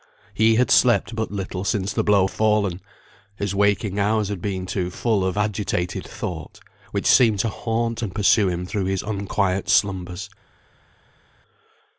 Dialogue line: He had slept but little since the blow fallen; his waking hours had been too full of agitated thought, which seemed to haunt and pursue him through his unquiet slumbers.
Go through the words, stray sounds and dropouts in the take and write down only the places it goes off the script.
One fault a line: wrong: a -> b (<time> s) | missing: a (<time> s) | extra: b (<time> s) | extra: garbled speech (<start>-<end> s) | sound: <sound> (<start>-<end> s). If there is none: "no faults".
no faults